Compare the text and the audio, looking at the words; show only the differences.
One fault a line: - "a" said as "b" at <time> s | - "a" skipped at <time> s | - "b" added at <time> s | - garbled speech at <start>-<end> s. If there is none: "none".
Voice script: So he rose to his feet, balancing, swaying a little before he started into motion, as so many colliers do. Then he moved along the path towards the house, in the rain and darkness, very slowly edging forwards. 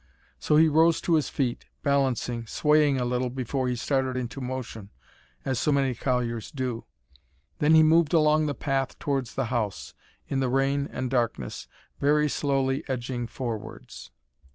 none